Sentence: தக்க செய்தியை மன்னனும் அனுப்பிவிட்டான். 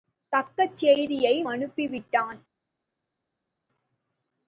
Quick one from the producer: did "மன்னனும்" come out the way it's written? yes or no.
no